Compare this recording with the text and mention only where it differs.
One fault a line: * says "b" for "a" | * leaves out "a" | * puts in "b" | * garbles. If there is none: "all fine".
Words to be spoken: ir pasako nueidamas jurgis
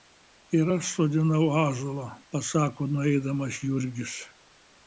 * puts in "aš sodinau ąžuolą"